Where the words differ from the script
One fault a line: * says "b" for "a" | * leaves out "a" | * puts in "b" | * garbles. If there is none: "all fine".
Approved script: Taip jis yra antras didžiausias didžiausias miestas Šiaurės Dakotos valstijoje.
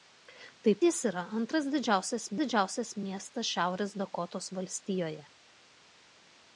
all fine